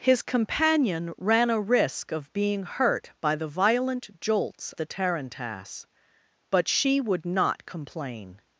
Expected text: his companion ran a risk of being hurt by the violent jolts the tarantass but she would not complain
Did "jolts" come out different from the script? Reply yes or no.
no